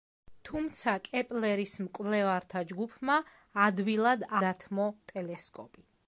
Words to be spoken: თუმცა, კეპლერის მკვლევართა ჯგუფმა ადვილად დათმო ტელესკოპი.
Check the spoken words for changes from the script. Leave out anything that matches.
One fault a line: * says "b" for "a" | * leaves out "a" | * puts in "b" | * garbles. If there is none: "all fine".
all fine